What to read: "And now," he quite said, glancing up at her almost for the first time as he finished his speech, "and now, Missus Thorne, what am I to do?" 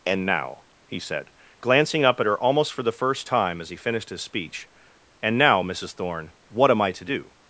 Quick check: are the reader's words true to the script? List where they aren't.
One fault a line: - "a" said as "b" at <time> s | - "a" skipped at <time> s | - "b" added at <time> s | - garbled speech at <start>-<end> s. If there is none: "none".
- "quite" skipped at 1.0 s